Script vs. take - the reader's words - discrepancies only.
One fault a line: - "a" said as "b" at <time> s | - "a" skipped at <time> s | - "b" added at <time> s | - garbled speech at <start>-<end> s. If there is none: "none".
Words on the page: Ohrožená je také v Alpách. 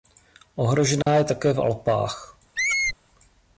none